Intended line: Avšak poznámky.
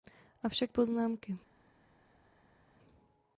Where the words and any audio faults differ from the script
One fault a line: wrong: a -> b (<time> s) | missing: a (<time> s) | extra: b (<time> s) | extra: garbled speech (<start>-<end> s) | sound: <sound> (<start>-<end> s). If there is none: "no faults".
no faults